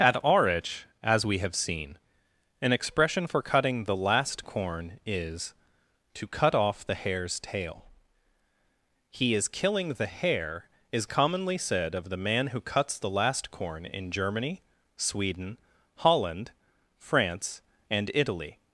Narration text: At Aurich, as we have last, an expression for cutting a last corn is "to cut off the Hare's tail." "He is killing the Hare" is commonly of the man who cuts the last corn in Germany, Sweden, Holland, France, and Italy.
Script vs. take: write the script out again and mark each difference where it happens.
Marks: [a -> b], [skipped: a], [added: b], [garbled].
At Aurich, as we have [last, -> seen] an expression for cutting [a -> the] last corn is "to cut off the Hare's tail." "He is killing the Hare" is commonly [added: said] of the man who cuts the last corn in Germany, Sweden, Holland, France, and Italy.